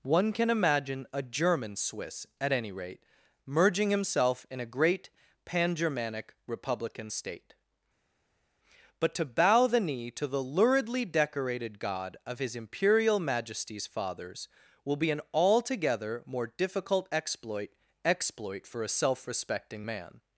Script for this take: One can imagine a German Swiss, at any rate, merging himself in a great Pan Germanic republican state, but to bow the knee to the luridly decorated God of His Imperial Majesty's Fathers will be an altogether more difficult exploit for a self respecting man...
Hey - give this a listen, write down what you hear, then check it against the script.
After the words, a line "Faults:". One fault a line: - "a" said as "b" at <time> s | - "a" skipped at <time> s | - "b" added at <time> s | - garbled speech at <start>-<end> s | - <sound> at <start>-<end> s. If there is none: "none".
One can imagine a German Swiss, at any rate, merging himself in a great Pan Germanic republican state, but to bow the knee to the luridly decorated God of His Imperial Majesty's Fathers will be an altogether more difficult exploit exploit for a self respecting man...
Faults:
- "exploit" added at 18.0 s